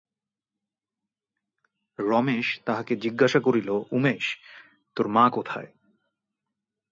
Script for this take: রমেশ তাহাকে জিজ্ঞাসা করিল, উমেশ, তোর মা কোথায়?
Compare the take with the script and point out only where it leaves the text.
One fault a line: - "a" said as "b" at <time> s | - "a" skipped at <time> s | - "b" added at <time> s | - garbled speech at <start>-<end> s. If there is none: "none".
none